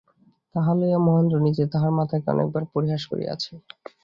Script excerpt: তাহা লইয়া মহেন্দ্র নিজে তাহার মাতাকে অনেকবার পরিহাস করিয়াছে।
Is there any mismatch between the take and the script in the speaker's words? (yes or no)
no